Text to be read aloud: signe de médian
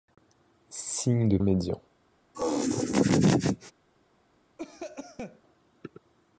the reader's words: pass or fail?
pass